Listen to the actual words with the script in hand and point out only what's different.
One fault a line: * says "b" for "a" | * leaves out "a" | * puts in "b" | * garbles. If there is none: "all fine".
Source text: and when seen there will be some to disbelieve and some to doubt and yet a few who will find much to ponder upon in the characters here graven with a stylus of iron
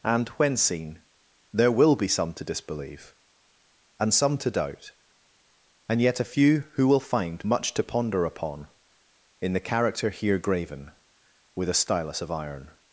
* says "character" for "characters"